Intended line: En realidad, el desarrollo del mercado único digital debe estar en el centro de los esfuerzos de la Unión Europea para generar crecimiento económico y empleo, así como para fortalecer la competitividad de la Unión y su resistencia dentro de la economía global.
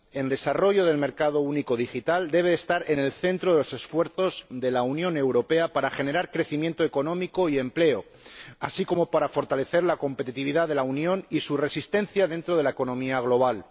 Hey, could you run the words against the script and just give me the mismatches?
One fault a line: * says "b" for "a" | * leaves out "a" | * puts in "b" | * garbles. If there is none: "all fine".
* leaves out "realidad el"